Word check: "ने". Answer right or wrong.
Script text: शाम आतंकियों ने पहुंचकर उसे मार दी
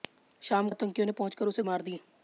right